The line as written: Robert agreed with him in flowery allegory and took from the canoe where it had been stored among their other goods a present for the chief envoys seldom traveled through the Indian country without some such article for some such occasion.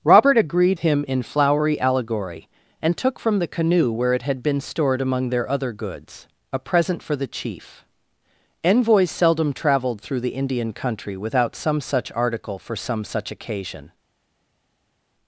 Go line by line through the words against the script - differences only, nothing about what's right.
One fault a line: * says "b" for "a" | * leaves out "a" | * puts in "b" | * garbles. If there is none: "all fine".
* leaves out "with"